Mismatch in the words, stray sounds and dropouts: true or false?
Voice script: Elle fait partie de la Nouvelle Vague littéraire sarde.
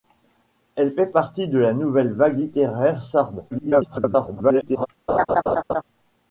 true